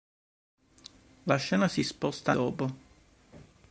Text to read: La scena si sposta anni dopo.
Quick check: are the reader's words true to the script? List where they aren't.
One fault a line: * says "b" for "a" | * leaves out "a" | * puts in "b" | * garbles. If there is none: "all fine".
* leaves out "anni"